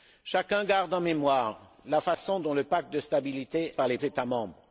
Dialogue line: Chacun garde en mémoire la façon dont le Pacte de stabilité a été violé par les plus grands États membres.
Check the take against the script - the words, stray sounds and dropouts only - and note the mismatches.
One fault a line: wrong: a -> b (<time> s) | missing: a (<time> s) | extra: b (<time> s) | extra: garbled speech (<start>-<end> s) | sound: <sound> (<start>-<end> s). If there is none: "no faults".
missing: a été violé (3.7 s)
missing: plus grands (4.0 s)